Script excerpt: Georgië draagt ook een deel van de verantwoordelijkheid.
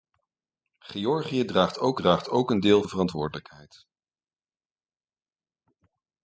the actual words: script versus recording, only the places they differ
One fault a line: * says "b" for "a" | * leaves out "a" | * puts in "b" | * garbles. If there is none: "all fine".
* puts in "draagt ook"
* leaves out "van"